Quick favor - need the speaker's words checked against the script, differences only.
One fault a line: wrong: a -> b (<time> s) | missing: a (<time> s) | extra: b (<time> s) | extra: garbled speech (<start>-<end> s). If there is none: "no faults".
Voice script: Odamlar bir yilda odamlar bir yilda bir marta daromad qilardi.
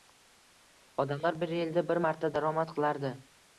missing: odamlar bir yilda (1.9 s)